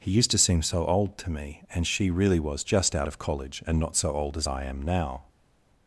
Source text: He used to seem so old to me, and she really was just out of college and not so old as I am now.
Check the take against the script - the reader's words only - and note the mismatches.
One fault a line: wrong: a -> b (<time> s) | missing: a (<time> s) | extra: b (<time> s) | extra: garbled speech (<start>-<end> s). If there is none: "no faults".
no faults